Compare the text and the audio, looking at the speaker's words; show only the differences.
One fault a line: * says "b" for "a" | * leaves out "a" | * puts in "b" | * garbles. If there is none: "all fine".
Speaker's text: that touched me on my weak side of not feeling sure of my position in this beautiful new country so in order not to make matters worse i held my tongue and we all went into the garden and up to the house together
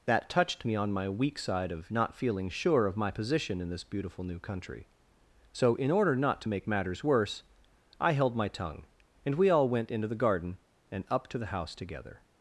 all fine